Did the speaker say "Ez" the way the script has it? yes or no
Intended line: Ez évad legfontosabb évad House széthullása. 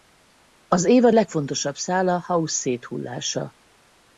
no